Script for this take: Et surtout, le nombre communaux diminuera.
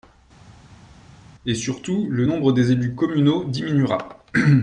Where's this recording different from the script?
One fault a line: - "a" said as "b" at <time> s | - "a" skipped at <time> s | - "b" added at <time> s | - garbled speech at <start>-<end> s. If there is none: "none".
- "des élus" added at 2.5 s